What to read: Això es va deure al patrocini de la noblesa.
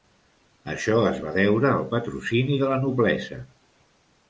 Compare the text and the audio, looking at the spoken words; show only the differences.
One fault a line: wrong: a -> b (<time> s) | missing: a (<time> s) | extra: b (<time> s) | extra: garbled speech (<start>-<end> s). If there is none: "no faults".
no faults